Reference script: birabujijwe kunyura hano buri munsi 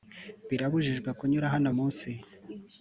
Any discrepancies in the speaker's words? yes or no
yes